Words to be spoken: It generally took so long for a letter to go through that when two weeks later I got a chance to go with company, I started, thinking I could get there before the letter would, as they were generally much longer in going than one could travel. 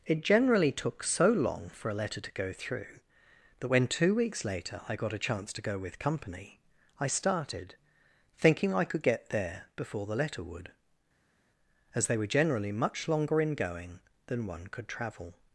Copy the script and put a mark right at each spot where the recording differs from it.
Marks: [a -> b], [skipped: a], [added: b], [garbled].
It generally took so long for a letter to go through that when two weeks later I got a chance to go with company, I started, thinking I could get there before the letter would, as they were generally much longer in going than one could travel.